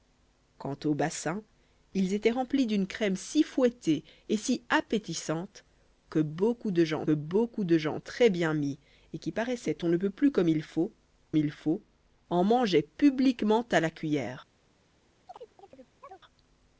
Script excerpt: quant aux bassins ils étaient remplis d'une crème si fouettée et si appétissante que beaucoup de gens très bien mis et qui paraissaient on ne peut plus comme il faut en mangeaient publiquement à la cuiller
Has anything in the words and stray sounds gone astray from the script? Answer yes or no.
yes